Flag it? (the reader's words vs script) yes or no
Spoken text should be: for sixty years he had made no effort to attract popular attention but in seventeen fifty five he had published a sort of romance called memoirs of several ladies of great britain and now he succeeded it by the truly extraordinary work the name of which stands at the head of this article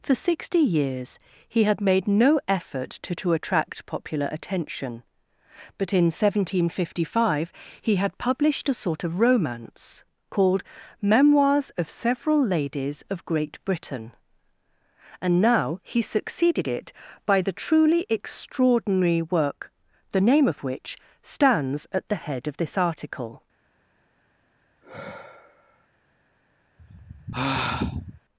yes